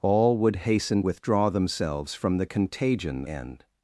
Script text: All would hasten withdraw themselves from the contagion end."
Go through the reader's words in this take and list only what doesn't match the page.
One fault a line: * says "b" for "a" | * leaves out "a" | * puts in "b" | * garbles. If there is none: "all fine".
all fine